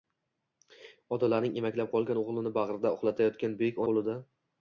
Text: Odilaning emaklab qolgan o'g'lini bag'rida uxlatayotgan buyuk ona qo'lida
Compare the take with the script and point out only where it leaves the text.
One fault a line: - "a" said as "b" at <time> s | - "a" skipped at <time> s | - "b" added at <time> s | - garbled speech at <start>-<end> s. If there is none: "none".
- "ona" skipped at 3.8 s